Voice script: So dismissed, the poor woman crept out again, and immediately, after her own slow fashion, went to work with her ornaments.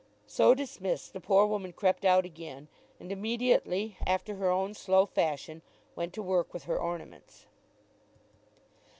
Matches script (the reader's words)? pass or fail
pass